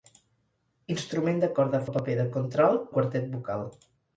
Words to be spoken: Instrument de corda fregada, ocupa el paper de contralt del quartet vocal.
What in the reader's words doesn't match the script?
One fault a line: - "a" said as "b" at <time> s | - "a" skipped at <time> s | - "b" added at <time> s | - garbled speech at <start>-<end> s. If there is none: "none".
- "fregada ocupa" skipped at 1.8 s
- "del" skipped at 2.9 s